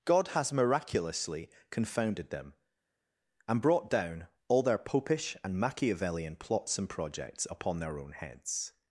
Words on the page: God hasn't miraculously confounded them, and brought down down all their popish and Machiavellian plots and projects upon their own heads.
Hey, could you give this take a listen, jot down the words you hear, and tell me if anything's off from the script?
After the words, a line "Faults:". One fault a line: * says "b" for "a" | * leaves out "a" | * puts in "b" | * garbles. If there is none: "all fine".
God has miraculously confounded them, and brought down all their popish and Machiavellian plots and projects upon their own heads.
Faults:
* says "has" for "hasn't"
* leaves out "down"